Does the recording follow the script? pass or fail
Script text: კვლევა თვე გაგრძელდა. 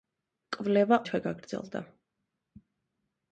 pass